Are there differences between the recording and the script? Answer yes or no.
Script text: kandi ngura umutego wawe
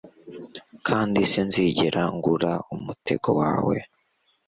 yes